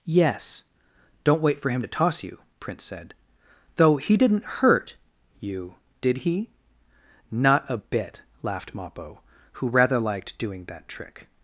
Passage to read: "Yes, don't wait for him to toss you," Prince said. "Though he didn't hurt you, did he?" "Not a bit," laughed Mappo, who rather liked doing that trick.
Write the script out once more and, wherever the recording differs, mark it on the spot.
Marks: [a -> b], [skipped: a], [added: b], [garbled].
"Yes, don't wait for him to toss you," Prince said. "Though he didn't hurt you, did he?" "Not a bit," laughed Mappo, who rather liked doing that trick.